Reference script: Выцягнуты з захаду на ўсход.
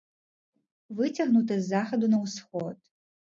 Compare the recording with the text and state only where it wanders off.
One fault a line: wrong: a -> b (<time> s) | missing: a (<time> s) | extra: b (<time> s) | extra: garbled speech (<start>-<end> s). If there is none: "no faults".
no faults